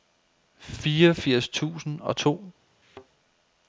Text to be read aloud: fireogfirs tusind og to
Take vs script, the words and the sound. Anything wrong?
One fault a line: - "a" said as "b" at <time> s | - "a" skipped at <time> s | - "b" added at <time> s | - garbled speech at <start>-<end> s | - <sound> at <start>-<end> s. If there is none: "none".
- thud at 2.8-3.1 s